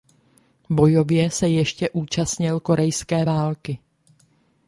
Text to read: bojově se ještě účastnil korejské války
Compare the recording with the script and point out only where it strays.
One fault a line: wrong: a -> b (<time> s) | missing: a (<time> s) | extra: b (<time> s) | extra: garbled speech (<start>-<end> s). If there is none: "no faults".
no faults